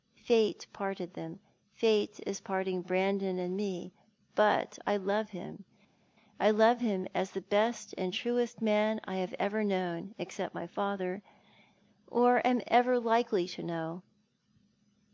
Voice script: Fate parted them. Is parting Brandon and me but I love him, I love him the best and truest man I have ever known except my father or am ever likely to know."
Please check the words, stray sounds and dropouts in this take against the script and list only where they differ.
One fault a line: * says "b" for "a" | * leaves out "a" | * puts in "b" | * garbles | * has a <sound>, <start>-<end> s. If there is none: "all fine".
* puts in "Fate"
* puts in "as"